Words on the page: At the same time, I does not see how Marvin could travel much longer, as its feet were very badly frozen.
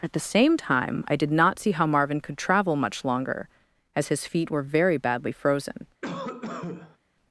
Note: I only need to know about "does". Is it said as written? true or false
false